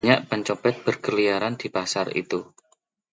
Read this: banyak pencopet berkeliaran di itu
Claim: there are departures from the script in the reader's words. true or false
true